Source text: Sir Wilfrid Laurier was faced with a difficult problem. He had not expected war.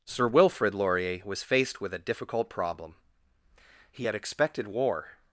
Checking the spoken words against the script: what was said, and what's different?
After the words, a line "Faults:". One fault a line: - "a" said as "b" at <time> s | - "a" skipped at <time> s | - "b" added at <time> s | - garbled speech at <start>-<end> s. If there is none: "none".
Sir Wilfrid Laurier was faced with a difficult problem. He had expected war.
Faults:
- "not" skipped at 4.1 s